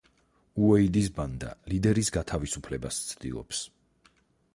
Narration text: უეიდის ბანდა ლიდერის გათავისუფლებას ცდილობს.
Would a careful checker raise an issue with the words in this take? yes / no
no